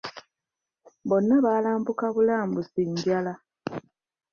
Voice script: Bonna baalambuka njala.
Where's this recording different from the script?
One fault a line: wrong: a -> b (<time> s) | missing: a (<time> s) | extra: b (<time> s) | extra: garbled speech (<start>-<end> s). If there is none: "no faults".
extra: bulambusi (2.1 s)